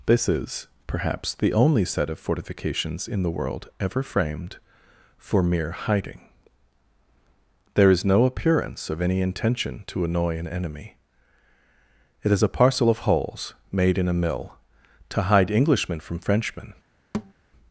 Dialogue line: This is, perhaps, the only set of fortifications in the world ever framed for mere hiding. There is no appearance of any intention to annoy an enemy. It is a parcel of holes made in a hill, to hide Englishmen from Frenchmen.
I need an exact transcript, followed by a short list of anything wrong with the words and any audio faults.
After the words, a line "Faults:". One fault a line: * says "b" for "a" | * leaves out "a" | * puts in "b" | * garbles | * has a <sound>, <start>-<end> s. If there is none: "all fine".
This is, perhaps, the only set of fortifications in the world ever framed for mere hiding. There is no appearance of any intention to annoy an enemy. It is a parcel of holes made in a mill, to hide Englishmen from Frenchmen.
Faults:
* says "mill" for "hill"
* has a thud, 17.1-17.3 s